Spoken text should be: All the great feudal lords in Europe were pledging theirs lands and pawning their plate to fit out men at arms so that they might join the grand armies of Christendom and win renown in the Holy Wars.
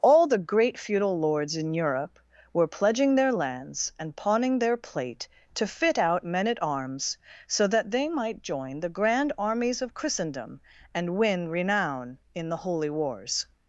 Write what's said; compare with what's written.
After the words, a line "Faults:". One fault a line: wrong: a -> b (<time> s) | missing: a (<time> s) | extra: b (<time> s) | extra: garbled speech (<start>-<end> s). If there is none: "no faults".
All the great feudal lords in Europe were pledging their lands and pawning their plate to fit out men at arms so that they might join the grand armies of Christendom and win renown in the Holy Wars.
Faults:
wrong: theirs -> their (3.1 s)